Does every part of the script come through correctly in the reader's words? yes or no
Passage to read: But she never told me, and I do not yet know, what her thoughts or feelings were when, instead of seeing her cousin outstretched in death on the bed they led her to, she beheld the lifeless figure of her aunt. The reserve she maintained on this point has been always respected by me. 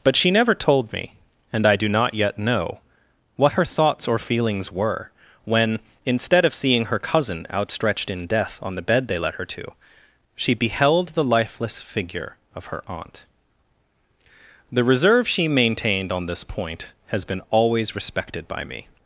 yes